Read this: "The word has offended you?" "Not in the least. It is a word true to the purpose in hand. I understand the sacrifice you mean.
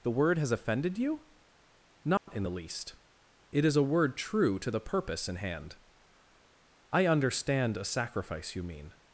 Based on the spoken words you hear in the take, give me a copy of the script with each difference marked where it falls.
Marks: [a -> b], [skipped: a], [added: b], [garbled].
"The word has offended you?" "Not in the least. It is a word true to the purpose in hand. I understand [the -> a] sacrifice you mean.